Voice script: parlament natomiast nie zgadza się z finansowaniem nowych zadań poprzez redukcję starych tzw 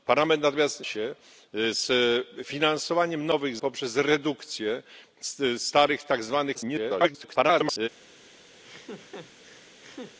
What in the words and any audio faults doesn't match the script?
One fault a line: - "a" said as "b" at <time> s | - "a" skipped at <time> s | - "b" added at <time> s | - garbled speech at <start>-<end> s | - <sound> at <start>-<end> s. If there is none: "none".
- "nie zgadza" skipped at 0.8 s
- "zadań" skipped at 3.6 s
- garbled speech at 6.5-7.9 s
- laugh at 8.6-10.2 s